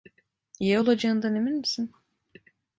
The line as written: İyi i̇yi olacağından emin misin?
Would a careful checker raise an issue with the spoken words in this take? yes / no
yes